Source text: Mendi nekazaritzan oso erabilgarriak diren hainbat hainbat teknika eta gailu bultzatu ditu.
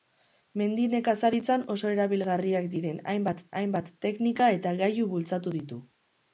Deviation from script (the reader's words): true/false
false